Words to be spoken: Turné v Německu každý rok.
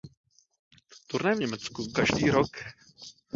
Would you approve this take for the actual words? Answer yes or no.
yes